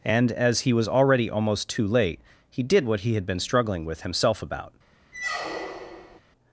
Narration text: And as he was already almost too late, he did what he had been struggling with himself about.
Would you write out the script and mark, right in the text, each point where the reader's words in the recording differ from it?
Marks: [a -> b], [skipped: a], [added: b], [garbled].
And as he was already almost too late, he did what he had been struggling with himself about.